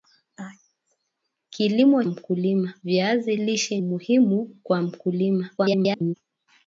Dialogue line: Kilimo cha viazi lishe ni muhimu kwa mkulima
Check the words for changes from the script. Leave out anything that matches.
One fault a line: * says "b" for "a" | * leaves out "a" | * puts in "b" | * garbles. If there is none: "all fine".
* says "mkulima" for "cha"
* leaves out "ni"
* garbles